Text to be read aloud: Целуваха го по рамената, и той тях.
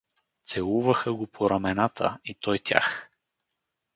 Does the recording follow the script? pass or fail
pass